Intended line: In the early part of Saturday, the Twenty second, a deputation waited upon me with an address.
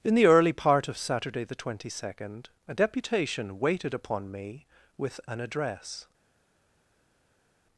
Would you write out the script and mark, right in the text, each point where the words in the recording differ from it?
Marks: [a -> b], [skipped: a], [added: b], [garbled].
In the early part of Saturday, the Twenty second, a deputation waited upon me with an address.